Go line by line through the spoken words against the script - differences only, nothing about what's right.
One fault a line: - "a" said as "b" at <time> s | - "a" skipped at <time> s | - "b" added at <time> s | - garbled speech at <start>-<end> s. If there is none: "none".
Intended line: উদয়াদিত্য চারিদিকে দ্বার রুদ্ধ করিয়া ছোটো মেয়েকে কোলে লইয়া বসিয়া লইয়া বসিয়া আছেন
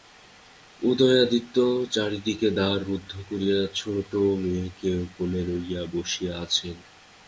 - "লইয়া বসিয়া" skipped at 6.3 s